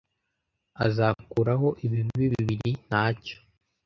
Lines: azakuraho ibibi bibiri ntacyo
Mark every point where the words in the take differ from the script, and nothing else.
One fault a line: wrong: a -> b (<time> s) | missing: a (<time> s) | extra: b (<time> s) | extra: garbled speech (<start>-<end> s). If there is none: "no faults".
no faults